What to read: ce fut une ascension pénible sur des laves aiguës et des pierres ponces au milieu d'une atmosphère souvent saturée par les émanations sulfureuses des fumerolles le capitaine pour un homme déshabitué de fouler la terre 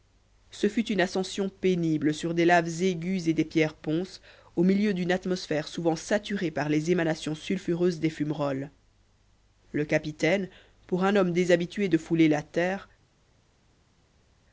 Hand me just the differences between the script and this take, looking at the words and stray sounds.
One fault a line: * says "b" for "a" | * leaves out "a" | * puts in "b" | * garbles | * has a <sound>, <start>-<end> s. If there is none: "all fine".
all fine